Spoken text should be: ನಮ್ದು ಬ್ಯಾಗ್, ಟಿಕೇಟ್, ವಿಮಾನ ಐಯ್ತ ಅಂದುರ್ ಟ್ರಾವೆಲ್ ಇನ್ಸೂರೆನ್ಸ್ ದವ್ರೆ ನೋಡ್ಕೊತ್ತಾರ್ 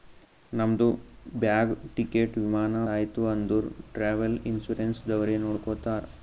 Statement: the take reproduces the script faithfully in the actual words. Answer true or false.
true